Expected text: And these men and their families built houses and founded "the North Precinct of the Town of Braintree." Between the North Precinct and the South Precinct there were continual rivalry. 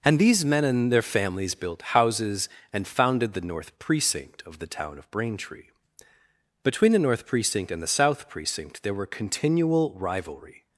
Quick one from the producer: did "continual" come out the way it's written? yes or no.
yes